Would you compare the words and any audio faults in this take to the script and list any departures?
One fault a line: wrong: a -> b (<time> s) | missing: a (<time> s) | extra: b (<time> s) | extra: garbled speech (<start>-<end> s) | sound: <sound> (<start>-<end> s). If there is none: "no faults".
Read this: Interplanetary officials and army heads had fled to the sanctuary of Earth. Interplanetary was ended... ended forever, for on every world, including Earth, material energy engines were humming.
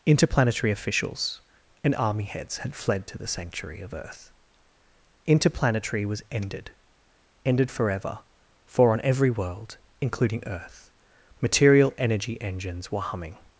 no faults